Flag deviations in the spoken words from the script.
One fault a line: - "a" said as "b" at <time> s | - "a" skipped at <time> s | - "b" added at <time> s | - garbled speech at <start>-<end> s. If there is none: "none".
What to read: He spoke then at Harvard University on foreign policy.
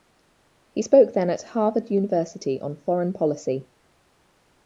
none